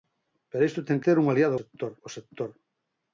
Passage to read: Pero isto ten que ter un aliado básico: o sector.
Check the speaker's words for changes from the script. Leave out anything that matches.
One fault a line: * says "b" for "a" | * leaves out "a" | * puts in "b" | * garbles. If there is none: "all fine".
* leaves out "que"
* says "sector" for "básico"